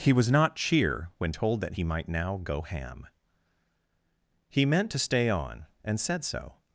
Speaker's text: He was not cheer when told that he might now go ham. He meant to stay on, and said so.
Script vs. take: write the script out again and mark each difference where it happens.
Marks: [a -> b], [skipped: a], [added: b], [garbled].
He was not cheer when told that he might now go ham. He meant to stay on, and said so.